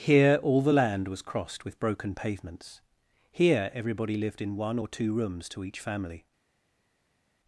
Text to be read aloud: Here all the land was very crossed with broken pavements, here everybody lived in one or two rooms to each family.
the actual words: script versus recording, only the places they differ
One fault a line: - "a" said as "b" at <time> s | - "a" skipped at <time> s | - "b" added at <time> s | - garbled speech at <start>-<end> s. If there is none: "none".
- "very" skipped at 1.2 s